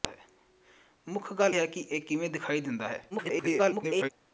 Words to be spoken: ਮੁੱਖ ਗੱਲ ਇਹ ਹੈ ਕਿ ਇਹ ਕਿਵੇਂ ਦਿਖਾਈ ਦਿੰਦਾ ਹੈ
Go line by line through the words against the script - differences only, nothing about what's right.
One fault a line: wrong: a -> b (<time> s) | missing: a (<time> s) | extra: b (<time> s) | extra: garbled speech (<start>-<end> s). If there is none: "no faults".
missing: ਇਹ (1.6 s)
extra: garbled speech (3.1-4.1 s)